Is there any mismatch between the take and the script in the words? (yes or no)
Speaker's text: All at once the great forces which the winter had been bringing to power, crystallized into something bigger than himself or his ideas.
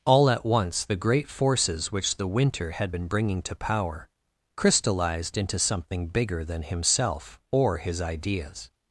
no